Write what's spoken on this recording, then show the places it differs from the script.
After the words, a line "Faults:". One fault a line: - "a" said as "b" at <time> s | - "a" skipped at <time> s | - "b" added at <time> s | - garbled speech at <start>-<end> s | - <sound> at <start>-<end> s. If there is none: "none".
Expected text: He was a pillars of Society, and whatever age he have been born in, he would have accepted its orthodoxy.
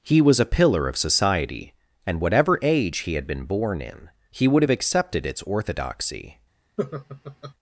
He was a pillar of Society, and whatever age he had been born in, he would have accepted its orthodoxy.
Faults:
- "pillars" said as "pillar" at 0.5 s
- "have" said as "had" at 3.1 s
- laugh at 6.8-7.5 s